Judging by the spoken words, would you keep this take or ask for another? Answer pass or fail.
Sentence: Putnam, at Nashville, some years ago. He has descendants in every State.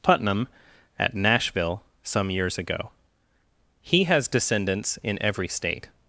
pass